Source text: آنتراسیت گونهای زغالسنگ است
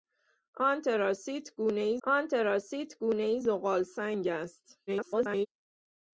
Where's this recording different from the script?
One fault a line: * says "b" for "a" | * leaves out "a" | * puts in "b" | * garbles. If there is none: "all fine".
* puts in "آنتراسیت گونهای"
* garbles